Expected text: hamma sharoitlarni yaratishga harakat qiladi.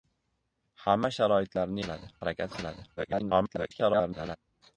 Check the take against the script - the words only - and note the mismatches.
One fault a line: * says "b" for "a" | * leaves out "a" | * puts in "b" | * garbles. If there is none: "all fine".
* says "qiladi" for "yaratishga"
* garbles